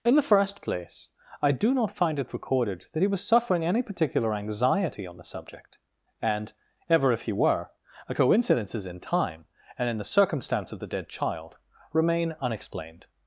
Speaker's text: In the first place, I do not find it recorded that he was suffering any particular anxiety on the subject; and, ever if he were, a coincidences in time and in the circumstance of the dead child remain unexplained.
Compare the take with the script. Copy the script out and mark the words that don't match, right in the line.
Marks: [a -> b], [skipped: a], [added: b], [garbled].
In the first place, I do not find it recorded that he was suffering any particular anxiety on the subject; and, ever if he were, a coincidences in time and in the circumstance of the dead child remain unexplained.